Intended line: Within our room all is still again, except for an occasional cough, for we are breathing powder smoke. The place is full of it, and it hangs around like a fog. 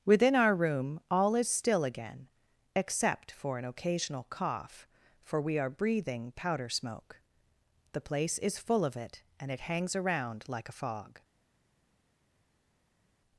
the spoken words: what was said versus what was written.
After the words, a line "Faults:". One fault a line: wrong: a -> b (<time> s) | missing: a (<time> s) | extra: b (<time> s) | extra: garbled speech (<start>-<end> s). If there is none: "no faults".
Within our room all is still again, except for an occasional cough, for we are breathing powder smoke. The place is full of it, and it hangs around like a fog.
Faults:
no faults